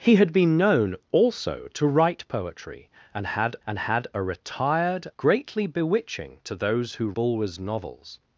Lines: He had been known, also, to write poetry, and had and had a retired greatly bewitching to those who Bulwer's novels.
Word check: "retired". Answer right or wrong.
right